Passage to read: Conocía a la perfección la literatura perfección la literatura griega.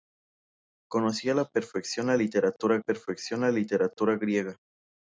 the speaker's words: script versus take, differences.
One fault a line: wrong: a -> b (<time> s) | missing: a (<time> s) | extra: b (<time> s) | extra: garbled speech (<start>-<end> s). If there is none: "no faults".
no faults